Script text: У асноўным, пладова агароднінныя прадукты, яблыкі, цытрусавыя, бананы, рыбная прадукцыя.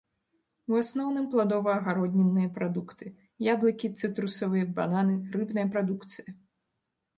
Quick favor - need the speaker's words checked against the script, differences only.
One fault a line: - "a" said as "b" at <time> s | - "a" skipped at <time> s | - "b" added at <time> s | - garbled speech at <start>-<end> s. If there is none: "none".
none